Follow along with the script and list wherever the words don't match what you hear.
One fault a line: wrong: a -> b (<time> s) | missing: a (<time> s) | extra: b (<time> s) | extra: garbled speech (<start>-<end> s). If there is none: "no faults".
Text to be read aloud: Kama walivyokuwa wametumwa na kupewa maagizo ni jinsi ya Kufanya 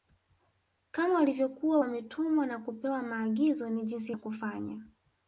no faults